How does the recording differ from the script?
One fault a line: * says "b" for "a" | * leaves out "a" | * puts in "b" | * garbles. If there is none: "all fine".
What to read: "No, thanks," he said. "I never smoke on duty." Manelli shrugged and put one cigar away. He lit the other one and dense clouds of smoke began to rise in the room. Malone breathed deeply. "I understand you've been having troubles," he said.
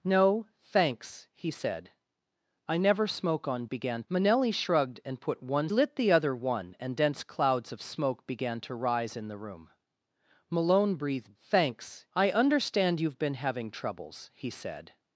* says "began" for "duty"
* leaves out "cigar away He"
* says "thanks" for "deeply"